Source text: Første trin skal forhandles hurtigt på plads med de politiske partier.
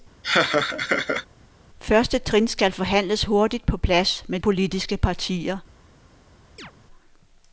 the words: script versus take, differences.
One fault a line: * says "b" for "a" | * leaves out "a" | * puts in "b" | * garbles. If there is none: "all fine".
* leaves out "de"